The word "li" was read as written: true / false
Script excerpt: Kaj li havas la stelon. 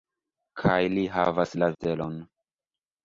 true